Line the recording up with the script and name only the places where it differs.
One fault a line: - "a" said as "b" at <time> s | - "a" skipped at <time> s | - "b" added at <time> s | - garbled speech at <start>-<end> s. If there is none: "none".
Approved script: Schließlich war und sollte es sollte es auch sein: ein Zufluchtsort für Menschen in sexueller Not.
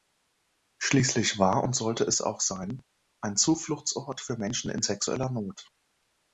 - "sollte es" skipped at 2.2 s